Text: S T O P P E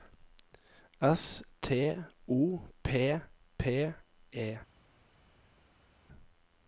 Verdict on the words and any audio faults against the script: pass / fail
pass